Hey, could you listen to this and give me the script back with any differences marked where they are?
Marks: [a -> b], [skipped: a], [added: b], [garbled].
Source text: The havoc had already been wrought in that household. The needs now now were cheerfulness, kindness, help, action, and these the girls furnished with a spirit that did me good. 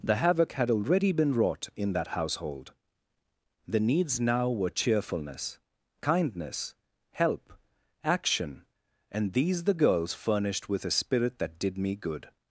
The havoc had already been wrought in that household. The needs now [skipped: now] were cheerfulness, kindness, help, action, and these the girls furnished with a spirit that did me good.